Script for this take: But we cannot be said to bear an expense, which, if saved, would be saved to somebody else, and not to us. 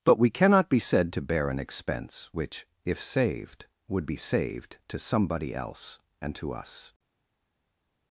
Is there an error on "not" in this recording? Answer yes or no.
yes